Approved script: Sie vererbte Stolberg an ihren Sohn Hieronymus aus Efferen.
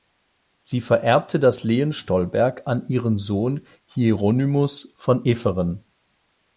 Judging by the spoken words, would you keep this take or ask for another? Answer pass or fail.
fail